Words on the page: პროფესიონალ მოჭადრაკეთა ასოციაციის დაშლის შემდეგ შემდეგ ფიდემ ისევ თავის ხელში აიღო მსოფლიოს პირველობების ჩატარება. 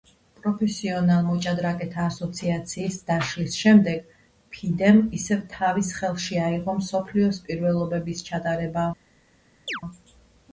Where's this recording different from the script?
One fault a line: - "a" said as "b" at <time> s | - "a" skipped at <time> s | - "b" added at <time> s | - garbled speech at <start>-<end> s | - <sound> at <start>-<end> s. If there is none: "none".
- "შემდეგ" skipped at 4.1 s
- chirp at 9.7-9.8 s